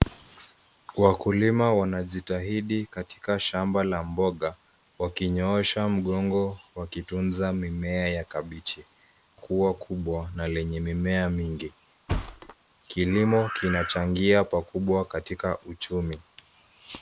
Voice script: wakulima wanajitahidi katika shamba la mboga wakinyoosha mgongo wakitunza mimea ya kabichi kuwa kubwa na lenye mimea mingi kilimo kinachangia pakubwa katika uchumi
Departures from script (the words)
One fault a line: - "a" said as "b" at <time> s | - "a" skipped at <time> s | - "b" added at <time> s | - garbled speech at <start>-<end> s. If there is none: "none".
none